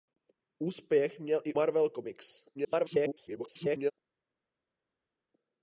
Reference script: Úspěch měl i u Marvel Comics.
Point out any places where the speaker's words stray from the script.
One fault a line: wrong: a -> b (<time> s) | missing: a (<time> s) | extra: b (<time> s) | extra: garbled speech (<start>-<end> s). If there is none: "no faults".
missing: u (1.5 s)
extra: garbled speech (2.5-3.9 s)